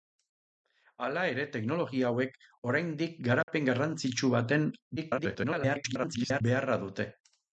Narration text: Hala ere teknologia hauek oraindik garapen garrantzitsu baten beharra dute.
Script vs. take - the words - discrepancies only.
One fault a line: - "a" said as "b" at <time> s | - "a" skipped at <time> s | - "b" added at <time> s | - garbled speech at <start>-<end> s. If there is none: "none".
- garbled speech at 5.0-6.4 s